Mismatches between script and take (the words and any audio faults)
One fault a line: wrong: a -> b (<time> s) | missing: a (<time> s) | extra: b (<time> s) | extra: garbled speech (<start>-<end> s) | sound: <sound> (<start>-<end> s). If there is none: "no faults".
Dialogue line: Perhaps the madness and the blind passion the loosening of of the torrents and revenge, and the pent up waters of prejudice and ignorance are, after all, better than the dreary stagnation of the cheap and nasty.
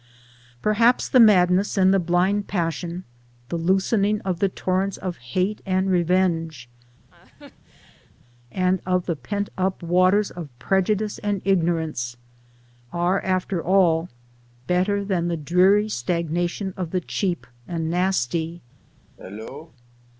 missing: of (4.4 s)
extra: of hate (5.0 s)
sound: laugh (7.1-8.1 s)
extra: of (8.8 s)
sound: cough (19.2-19.7 s)